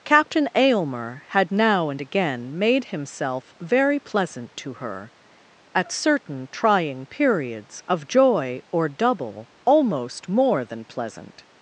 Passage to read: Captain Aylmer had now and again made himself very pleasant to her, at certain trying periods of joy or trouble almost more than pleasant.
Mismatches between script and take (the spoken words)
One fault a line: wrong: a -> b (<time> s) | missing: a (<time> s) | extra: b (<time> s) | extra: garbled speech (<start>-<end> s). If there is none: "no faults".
wrong: trouble -> double (8.9 s)